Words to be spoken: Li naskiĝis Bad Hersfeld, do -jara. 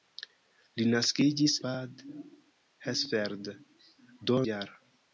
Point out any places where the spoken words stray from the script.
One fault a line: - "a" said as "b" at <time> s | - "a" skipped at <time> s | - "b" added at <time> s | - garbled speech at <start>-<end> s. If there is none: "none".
none